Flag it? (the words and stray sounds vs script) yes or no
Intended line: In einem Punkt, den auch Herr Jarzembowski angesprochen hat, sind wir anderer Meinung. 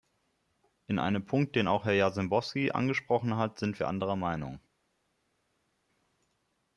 no